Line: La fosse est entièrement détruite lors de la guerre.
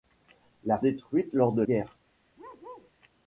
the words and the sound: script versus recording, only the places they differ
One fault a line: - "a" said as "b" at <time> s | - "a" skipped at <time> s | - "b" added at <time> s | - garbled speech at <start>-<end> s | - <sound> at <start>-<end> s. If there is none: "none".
- "fosse est entièrement" skipped at 0.8 s
- "la" skipped at 1.6 s
- bark at 2.4-2.9 s